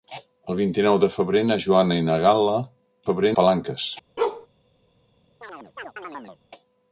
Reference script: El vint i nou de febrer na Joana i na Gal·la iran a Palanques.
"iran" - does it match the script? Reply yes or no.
no